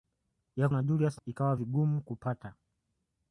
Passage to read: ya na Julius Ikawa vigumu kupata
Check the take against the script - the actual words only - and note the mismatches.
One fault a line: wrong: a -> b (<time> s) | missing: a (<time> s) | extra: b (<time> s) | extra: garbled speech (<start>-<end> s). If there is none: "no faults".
no faults